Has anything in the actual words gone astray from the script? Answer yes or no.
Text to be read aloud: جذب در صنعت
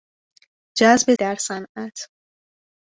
no